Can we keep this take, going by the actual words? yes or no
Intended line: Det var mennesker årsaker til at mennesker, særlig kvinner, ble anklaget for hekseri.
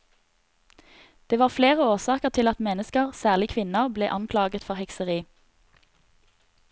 no